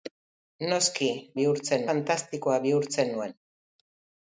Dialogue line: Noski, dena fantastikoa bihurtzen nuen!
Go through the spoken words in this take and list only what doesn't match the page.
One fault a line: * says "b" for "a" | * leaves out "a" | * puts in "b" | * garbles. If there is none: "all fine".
* says "bihurtzen" for "dena"